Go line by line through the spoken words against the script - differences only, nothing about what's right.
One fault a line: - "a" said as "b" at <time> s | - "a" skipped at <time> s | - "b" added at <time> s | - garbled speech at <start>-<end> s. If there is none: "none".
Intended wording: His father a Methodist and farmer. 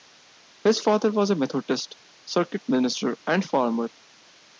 - "was" added at 1.1 s
- "circuit minister" added at 2.2 s